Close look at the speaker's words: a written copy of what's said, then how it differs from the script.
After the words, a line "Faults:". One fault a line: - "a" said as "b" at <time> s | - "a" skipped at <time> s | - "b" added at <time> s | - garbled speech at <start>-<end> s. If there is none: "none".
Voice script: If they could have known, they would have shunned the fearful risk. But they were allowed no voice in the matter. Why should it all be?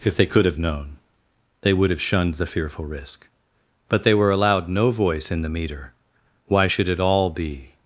If they could have known, they would have shunned the fearful risk. But they were allowed no voice in the meter. Why should it all be?
Faults:
- "matter" said as "meter" at 5.5 s